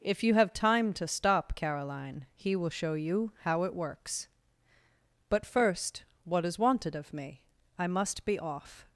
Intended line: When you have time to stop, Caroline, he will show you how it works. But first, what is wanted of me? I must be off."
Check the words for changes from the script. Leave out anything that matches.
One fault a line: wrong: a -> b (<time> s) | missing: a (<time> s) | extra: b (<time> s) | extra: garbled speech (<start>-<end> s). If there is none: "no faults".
wrong: When -> If (0.0 s)